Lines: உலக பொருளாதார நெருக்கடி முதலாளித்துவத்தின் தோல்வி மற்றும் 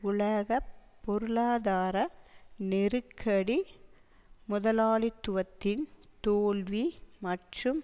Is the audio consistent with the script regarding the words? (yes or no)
yes